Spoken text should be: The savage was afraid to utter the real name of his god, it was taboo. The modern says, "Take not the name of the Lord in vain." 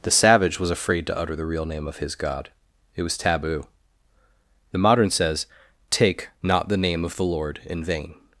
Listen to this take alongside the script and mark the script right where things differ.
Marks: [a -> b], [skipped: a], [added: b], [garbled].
The savage was afraid to utter the real name of his god, it was taboo. The modern says, "Take not the name of the Lord in vain."